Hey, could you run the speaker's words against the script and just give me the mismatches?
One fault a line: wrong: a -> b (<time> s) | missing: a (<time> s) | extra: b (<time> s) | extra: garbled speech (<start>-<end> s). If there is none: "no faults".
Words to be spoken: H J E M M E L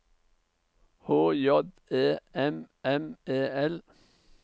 no faults